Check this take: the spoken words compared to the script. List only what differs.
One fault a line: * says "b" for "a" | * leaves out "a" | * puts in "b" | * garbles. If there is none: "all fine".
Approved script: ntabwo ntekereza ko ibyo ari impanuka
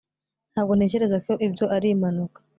all fine